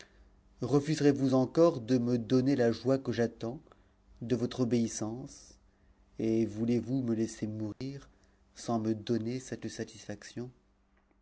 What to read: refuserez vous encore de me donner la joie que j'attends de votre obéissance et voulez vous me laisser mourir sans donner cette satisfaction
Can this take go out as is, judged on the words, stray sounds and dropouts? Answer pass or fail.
fail